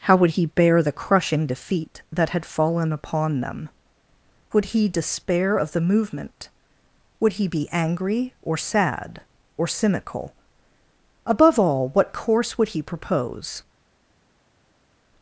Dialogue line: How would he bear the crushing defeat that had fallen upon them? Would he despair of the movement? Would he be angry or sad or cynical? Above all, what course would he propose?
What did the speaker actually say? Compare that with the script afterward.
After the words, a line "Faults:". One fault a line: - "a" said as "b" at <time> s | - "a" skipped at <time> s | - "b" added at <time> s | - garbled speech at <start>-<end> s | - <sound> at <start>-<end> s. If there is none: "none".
How would he bear the crushing defeat that had fallen upon them? Would he despair of the movement? Would he be angry or sad or cynical? Above all, what course would he propose?
Faults:
none